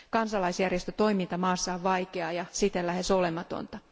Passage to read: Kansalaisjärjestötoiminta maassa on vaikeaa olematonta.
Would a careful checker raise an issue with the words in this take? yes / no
yes